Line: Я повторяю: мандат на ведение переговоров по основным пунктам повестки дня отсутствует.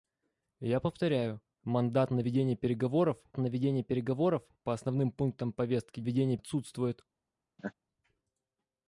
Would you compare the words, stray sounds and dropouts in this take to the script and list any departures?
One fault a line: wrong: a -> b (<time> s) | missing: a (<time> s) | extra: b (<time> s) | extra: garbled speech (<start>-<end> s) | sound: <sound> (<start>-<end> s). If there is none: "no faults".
extra: на ведение переговоров (3.4 s)
wrong: дня -> ведение (6.0 s)
sound: laugh (7.6-7.7 s)